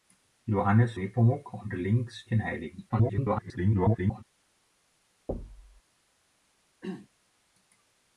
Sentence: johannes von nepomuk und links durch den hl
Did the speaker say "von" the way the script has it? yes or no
no